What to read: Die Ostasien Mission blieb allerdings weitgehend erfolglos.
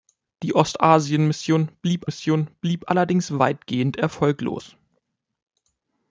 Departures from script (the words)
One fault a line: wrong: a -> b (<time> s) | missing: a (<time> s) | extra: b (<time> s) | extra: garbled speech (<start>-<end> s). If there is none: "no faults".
extra: Mission blieb (2.1 s)